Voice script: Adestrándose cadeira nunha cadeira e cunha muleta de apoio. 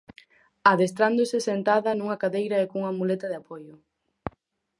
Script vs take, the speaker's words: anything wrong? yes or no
yes